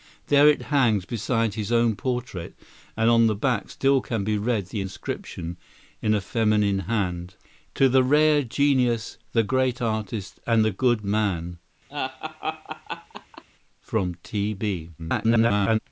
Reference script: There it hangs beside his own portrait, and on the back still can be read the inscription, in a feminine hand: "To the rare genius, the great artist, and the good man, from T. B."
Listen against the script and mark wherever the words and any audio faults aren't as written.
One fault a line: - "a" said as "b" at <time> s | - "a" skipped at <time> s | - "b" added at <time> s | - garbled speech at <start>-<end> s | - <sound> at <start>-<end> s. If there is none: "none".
- laugh at 11.9-13.4 s
- garbled speech at 15.0-15.8 s